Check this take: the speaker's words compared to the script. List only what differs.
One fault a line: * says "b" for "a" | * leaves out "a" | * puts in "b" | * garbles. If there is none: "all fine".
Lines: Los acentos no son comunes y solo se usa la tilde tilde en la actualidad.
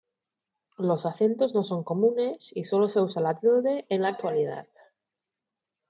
* leaves out "tilde"